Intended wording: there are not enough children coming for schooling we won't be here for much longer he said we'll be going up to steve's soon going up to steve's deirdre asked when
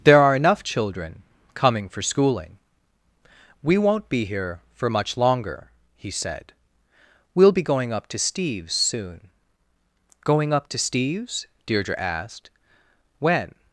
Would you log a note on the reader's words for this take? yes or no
yes